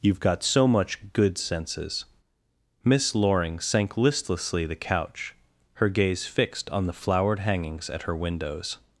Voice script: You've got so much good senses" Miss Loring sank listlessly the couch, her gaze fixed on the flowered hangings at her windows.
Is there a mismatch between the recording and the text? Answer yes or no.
no